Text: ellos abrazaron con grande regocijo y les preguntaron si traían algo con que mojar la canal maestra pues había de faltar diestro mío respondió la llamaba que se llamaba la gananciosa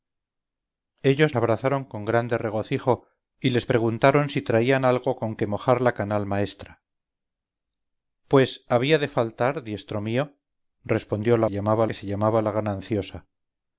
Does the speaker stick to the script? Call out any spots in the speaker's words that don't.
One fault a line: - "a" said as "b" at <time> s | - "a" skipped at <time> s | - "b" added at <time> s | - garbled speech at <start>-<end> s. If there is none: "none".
none